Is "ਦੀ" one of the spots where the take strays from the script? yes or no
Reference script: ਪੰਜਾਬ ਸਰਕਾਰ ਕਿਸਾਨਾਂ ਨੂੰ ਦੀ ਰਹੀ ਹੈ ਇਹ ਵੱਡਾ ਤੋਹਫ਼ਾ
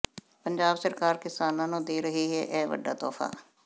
yes